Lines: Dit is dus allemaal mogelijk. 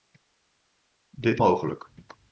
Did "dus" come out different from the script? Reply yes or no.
yes